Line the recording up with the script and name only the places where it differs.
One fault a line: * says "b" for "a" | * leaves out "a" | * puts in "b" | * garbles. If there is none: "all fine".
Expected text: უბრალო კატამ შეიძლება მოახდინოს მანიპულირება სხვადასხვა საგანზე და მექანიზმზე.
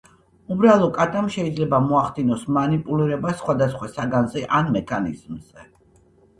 * says "ან" for "და"